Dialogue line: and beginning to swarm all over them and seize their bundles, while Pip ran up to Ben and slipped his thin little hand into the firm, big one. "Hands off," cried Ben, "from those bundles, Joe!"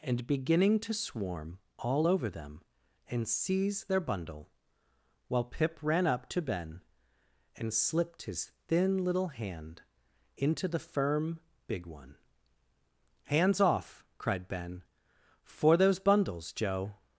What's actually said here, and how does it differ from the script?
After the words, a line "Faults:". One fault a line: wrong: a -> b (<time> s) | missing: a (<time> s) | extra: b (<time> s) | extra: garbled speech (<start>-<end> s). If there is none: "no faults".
and beginning to swarm all over them and seize their bundle, while Pip ran up to Ben and slipped his thin little hand into the firm, big one. "Hands off," cried Ben, "for those bundles, Joe!"
Faults:
wrong: bundles -> bundle (4.0 s)
wrong: from -> for (15.4 s)